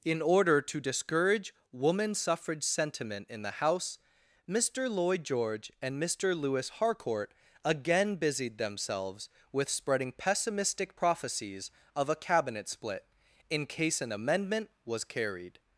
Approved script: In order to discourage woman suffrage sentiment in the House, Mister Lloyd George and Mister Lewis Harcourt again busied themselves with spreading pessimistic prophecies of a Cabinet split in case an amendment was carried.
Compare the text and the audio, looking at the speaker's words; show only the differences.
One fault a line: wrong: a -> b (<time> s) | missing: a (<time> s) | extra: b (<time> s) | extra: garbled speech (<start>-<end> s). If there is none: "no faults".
no faults